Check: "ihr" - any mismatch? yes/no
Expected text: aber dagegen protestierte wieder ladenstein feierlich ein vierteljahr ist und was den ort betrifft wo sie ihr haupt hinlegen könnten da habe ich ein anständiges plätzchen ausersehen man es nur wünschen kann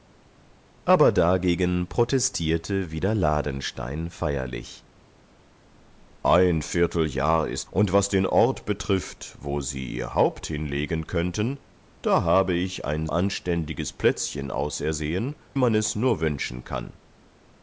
no